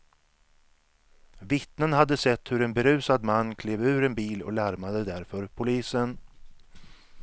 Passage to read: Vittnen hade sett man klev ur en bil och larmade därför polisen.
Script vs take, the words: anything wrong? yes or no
yes